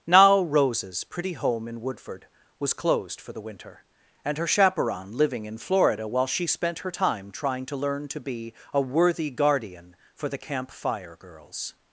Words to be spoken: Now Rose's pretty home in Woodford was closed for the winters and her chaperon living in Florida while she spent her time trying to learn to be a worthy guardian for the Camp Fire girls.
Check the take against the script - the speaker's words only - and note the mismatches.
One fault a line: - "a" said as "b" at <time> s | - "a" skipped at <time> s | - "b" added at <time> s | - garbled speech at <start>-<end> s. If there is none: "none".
- "winters" said as "winter" at 3.4 s